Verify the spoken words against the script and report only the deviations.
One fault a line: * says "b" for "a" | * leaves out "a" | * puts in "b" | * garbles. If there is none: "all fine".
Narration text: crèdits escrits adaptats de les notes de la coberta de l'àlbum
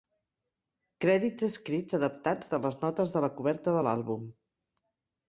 all fine